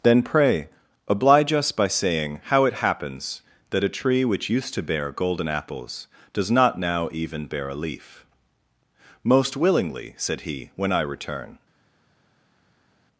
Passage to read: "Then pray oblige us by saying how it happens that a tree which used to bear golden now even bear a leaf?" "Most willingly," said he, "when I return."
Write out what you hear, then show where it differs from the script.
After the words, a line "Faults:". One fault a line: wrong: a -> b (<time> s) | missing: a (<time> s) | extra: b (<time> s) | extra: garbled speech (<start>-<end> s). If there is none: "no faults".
"Then pray oblige us by saying how it happens that a tree which used to bear golden apples does not now even bear a leaf?" "Most willingly," said he, "when I return."
Faults:
extra: apples does not (5.5 s)